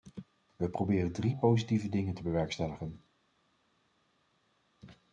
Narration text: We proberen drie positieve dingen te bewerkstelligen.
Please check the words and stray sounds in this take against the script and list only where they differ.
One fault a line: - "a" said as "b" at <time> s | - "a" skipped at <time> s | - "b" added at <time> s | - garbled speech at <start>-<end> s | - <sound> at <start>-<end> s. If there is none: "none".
none